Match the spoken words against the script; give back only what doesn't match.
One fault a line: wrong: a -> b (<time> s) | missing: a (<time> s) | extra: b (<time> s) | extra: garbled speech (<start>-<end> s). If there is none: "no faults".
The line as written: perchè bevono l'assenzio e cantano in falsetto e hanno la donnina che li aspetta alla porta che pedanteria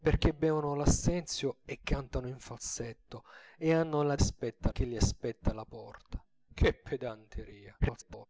wrong: donnina -> aspetta (4.1 s)
extra: garbled speech (7.8-8.3 s)